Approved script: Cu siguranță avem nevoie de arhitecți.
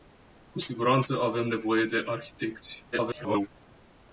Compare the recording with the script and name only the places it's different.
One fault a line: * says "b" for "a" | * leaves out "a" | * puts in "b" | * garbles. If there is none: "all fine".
* garbles